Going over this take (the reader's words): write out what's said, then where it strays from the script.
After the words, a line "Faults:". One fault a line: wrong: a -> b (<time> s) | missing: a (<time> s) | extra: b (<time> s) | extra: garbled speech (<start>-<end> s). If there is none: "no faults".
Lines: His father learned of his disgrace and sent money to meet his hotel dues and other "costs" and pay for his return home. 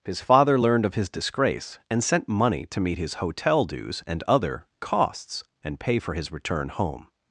His father learned of his disgrace and sent money to meet his hotel dues and other "costs" and pay for his return home.
Faults:
no faults